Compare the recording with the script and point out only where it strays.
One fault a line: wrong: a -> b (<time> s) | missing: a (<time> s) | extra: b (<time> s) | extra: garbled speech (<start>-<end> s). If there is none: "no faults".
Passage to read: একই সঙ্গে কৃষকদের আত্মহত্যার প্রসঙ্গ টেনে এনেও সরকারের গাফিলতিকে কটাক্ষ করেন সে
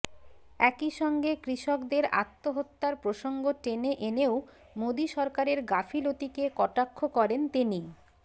extra: মোদী (4.8 s)
wrong: সে -> তিনি (7.5 s)